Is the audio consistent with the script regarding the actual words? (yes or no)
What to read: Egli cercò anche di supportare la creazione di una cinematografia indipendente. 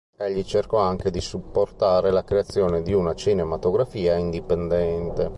yes